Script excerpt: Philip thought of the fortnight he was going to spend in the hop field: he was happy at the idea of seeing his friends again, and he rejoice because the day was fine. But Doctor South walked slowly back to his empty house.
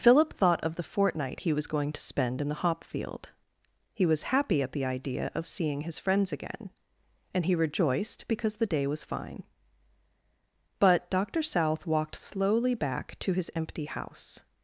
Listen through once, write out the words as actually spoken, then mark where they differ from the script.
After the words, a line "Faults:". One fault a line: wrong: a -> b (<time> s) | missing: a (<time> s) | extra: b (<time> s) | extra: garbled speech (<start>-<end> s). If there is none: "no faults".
Philip thought of the fortnight he was going to spend in the hop field: he was happy at the idea of seeing his friends again, and he rejoiced because the day was fine. But Doctor South walked slowly back to his empty house.
Faults:
wrong: rejoice -> rejoiced (7.5 s)